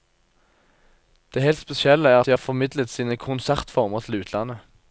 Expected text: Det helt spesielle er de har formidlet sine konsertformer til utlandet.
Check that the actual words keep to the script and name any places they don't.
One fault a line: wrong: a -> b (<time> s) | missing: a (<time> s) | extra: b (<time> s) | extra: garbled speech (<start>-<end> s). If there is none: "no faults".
no faults